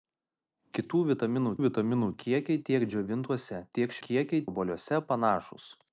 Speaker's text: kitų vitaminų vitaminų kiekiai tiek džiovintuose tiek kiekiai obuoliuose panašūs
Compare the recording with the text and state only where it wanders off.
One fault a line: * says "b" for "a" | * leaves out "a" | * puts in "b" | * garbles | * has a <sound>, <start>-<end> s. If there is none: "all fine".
all fine